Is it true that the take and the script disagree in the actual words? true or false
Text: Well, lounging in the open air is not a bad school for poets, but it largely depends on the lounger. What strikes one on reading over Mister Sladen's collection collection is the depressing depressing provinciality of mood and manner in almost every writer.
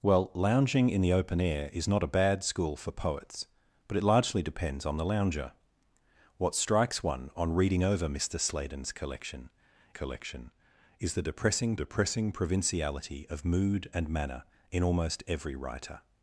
false